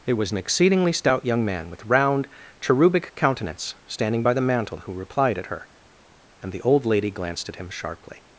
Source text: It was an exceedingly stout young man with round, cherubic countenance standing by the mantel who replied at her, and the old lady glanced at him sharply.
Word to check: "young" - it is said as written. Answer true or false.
true